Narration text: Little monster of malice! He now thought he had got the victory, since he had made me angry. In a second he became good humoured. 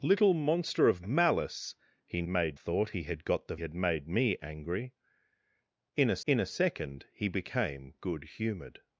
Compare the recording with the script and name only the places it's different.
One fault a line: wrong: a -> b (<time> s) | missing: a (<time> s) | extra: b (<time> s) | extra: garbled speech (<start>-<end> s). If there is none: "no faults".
wrong: now -> made (2.3 s)
missing: victory since he (3.6 s)
extra: in a (6.3 s)